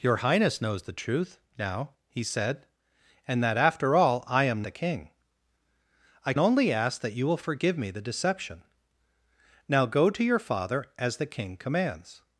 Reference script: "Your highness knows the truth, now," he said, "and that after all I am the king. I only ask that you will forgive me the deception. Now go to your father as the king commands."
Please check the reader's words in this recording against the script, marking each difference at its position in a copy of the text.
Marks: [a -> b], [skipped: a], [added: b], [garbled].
"Your highness knows the truth, now," he said, "and that after all I am the king. I only ask that you will forgive me the deception. Now go to your father as the king commands."